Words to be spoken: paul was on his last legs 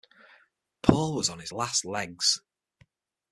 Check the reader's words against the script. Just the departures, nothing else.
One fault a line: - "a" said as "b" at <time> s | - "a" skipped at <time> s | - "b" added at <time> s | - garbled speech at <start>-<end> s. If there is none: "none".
none